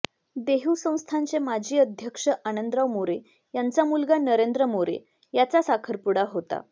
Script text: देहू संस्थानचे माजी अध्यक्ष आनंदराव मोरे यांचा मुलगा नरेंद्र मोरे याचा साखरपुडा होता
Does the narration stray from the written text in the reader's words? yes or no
no